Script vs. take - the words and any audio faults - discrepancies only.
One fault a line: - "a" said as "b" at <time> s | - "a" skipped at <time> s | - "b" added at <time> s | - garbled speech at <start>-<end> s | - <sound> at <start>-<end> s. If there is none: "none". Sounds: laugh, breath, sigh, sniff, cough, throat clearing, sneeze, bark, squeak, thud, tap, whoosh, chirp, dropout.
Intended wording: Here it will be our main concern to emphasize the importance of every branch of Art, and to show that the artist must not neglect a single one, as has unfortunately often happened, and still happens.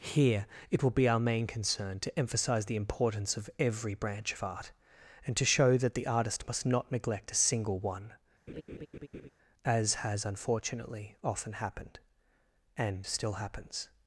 - laugh at 8.5-9.3 s